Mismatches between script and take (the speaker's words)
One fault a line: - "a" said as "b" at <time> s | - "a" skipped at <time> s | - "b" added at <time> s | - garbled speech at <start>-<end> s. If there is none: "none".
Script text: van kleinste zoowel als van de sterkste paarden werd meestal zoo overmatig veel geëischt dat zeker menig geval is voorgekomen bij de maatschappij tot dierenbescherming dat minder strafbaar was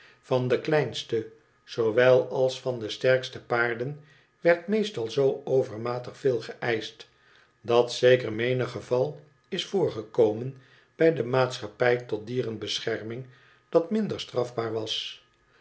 - "de" added at 0.5 s